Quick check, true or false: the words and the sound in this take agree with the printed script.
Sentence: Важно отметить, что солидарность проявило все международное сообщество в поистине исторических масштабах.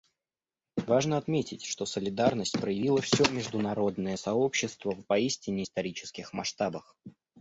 true